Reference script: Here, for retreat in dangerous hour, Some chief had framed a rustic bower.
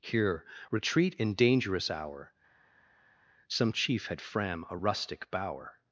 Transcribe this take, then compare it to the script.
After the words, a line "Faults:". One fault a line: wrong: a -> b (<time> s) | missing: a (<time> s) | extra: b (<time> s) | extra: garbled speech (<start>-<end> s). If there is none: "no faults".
Here, retreat in dangerous hour, Some chief had fram a rustic bower.
Faults:
missing: for (0.4 s)
wrong: framed -> fram (4.2 s)